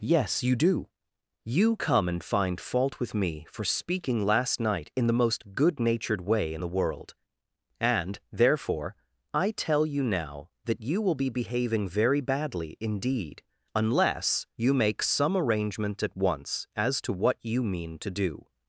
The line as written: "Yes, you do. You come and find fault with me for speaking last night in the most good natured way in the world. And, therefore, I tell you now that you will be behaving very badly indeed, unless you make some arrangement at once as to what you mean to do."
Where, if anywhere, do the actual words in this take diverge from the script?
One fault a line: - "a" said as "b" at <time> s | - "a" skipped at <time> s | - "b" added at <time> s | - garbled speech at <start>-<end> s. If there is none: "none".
none